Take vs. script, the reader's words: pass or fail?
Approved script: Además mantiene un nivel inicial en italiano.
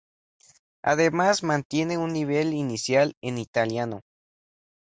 pass